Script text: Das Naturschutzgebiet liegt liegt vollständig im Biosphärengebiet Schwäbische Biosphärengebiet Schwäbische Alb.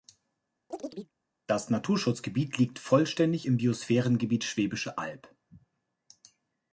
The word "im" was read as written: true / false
true